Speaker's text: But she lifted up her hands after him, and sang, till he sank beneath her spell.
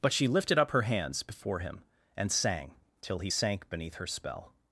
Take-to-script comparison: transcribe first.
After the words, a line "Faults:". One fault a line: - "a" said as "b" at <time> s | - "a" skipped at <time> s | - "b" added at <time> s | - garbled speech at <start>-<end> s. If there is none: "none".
But she lifted up her hands before him, and sang, till he sank beneath her spell.
Faults:
- "after" said as "before" at 1.2 s